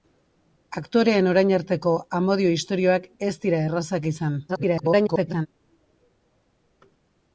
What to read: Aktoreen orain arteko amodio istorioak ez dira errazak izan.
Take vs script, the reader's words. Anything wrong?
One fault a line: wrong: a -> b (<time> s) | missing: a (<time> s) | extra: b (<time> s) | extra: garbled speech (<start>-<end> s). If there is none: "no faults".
extra: garbled speech (4.5-5.5 s)